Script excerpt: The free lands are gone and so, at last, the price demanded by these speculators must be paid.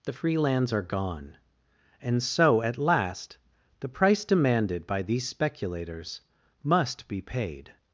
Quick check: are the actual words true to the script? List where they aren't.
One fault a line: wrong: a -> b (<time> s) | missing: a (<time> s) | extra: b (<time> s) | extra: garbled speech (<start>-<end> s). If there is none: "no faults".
no faults